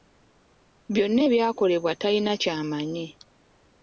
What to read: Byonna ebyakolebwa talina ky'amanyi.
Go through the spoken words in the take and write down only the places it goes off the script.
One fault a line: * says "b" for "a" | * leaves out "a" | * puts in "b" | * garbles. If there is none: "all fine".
all fine